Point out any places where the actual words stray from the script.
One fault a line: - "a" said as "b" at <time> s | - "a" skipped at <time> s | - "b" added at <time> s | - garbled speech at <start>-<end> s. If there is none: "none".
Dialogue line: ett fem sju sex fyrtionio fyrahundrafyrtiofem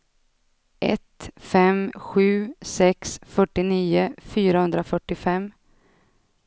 none